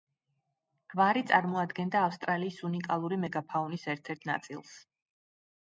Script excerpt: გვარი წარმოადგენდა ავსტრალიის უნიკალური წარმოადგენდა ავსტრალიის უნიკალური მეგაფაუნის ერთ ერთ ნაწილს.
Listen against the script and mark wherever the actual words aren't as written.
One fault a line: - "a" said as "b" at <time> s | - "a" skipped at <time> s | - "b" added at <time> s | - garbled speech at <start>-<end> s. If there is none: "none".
- "წარმოადგენდა ავსტრალიის უნიკალური" skipped at 3.2 s